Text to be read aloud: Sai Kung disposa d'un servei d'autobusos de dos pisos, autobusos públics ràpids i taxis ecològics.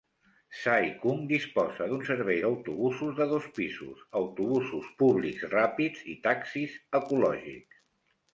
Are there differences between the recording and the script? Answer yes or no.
no